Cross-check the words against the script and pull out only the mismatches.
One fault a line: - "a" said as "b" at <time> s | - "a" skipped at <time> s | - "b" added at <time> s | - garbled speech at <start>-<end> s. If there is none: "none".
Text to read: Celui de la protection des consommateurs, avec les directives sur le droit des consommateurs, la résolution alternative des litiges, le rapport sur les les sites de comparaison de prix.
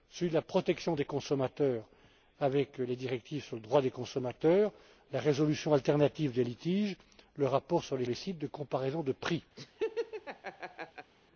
none